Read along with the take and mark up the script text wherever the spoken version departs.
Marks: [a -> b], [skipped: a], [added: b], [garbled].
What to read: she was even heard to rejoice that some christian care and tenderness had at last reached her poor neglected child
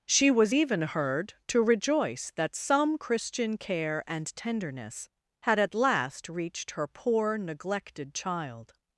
she was even heard to rejoice that some christian care and tenderness had at last reached her poor neglected child